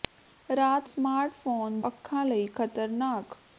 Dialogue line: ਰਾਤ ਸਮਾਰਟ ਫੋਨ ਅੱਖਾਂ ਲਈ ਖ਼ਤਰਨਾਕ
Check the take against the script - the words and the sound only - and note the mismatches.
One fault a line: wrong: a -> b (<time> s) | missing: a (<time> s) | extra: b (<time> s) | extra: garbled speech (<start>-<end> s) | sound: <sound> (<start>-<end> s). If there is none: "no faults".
no faults